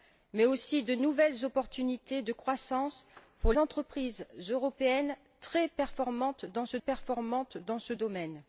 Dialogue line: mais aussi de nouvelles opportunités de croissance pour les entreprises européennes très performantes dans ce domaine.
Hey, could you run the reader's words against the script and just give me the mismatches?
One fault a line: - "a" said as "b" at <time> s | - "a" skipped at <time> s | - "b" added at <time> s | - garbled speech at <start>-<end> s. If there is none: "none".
- "les" skipped at 3.5 s
- "performantes dans ce" added at 6.8 s